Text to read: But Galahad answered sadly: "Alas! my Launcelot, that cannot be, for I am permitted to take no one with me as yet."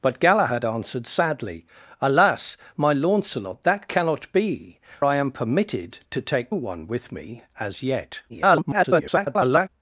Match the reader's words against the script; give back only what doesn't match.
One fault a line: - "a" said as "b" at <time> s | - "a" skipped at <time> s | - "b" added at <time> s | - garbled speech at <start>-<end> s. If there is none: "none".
- "for" skipped at 4.8 s
- "no" skipped at 6.5 s
- garbled speech at 8.3-9.7 s